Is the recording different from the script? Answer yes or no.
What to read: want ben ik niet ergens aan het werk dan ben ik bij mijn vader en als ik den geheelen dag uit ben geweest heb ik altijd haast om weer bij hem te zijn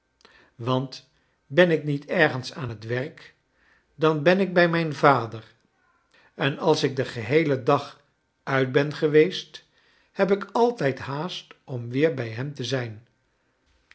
no